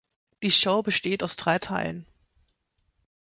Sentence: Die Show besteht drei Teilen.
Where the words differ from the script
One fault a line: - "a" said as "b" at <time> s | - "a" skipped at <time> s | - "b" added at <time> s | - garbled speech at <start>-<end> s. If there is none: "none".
- "aus" added at 1.2 s